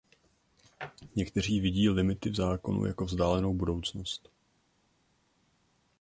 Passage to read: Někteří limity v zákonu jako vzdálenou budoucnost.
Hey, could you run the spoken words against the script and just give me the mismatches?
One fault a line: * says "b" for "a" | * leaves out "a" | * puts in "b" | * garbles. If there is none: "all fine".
* puts in "vidí"